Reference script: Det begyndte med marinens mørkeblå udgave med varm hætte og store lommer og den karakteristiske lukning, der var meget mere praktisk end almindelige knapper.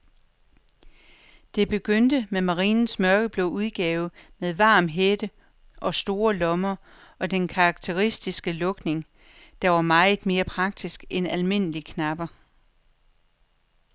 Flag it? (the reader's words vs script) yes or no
no